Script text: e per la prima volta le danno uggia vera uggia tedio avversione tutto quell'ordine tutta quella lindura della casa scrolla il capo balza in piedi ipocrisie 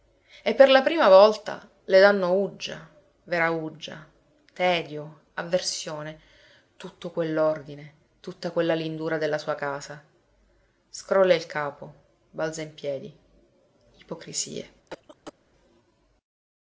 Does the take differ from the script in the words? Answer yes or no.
yes